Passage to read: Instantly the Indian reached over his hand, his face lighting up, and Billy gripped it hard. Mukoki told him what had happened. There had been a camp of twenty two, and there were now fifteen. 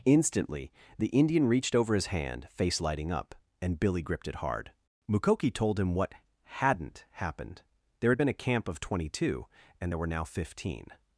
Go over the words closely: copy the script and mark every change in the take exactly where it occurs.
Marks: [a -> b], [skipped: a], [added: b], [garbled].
Instantly the Indian reached over his hand, [skipped: his] face lighting up, and Billy gripped it hard. Mukoki told him what [had -> hadn't] happened. There had been a camp of twenty two, and there were now fifteen.